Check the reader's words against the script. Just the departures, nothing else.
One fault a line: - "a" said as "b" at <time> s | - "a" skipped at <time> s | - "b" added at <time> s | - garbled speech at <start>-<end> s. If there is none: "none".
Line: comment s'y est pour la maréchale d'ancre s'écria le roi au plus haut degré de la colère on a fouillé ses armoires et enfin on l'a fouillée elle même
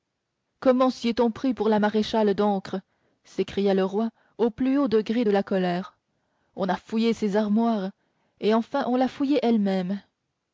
- "on pris" added at 1.2 s